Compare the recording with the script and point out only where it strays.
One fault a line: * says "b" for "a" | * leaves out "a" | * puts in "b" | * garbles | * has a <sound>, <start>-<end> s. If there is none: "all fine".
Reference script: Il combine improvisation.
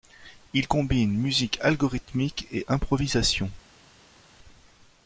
* puts in "musique algorithmique et"